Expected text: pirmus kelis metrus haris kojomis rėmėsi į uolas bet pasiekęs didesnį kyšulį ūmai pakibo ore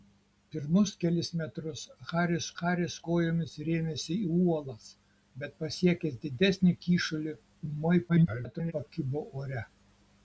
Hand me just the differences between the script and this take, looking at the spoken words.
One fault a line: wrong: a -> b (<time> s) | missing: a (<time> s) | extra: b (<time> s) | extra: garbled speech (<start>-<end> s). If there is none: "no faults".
extra: haris (2.6 s)
extra: garbled speech (8.1-8.7 s)